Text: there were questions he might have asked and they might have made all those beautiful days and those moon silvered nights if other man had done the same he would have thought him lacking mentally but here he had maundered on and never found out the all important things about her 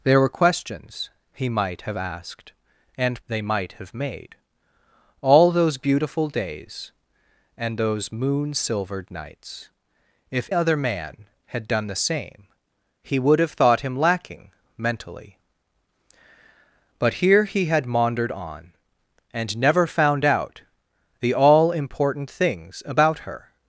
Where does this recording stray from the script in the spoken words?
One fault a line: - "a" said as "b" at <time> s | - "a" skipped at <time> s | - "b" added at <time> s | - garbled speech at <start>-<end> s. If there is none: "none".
none